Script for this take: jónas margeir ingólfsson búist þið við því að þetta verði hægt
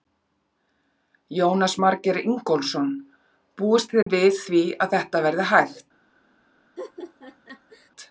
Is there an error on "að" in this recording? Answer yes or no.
no